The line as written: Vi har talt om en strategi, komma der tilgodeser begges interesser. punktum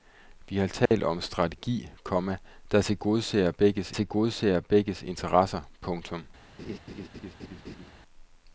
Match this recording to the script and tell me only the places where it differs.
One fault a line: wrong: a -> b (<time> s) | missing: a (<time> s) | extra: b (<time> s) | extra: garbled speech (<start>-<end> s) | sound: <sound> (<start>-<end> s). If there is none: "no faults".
sound: dropout (0.9-0.9 s)
extra: tilgodeser begges (3.9 s)
sound: laugh (6.6-7.9 s)